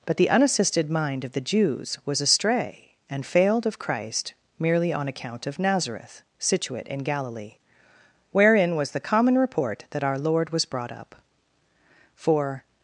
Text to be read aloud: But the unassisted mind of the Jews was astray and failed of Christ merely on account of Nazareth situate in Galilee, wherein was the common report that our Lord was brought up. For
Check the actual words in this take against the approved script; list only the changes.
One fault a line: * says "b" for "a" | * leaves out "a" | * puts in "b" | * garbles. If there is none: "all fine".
all fine